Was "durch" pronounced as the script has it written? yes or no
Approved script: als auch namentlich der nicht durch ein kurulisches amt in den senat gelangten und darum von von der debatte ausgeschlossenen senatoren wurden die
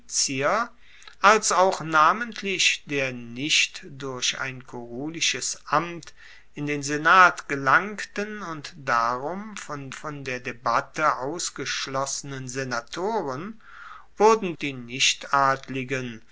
yes